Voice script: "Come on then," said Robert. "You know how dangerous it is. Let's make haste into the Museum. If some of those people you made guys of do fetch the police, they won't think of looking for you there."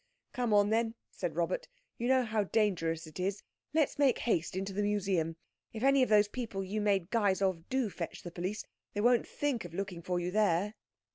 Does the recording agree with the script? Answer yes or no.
no